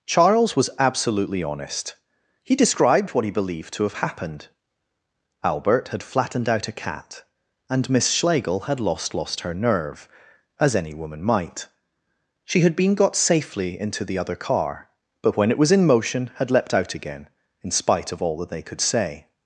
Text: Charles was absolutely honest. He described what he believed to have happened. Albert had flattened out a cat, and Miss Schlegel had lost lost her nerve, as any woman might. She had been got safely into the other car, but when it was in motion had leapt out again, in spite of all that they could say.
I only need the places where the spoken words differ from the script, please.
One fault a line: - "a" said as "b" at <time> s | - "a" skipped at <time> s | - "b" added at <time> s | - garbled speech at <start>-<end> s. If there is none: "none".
none